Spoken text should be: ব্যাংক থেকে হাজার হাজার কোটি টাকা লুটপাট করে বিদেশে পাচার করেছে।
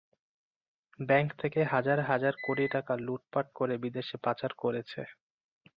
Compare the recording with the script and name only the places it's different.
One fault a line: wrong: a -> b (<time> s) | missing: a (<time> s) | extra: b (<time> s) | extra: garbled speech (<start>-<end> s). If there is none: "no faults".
no faults